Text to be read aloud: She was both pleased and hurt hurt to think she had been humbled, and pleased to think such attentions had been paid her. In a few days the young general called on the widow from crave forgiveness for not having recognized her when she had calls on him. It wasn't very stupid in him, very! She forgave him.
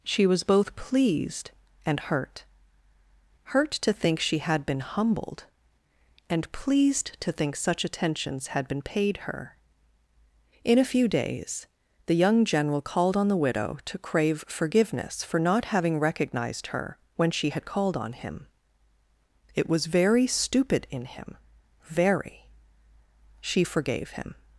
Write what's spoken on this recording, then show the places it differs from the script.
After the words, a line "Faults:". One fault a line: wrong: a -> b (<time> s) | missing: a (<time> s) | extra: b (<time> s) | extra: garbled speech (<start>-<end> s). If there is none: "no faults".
She was both pleased and hurt hurt to think she had been humbled, and pleased to think such attentions had been paid her. In a few days the young general called on the widow to crave forgiveness for not having recognized her when she had called on him. It was very stupid in him, very! She forgave him.
Faults:
wrong: from -> to (13.9 s)
wrong: calls -> called (17.7 s)
wrong: wasn't -> was (19.7 s)